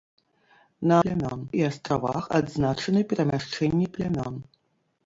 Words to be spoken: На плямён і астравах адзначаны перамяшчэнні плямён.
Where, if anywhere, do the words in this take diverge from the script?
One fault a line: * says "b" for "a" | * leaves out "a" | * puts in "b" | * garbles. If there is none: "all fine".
all fine